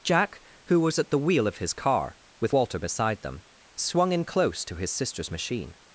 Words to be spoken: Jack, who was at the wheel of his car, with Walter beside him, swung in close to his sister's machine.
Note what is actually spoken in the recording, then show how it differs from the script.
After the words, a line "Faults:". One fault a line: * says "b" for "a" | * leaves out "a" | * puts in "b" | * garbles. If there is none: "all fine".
Jack, who was at the wheel of his car, with Walter beside them, swung in close to his sister's machine.
Faults:
* says "them" for "him"